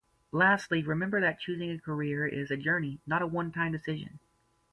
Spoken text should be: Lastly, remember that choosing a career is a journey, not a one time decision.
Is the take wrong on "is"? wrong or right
right